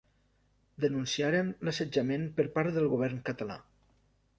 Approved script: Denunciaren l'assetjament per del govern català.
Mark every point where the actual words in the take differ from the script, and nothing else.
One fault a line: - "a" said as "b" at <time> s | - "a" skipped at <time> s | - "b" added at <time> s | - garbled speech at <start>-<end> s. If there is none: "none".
- "part" added at 2.6 s